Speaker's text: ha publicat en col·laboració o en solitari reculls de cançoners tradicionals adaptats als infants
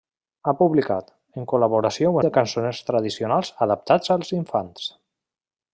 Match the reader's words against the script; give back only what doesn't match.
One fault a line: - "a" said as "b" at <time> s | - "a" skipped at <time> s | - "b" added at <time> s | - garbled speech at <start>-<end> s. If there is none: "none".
- "en solitari reculls" skipped at 2.2 s